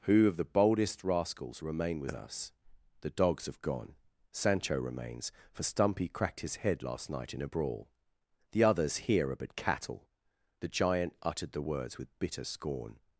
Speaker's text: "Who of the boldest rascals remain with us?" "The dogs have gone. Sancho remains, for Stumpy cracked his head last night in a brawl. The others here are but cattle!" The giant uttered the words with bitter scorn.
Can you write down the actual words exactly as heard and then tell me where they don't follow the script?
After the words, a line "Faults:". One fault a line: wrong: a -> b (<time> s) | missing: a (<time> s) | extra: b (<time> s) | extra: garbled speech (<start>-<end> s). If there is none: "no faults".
"Who of the boldest rascals remain with us?" "The dogs have gone. Sancho remains, for Stumpy cracked his head last night in a brawl. The others here are but cattle!" The giant uttered the words with bitter scorn.
Faults:
no faults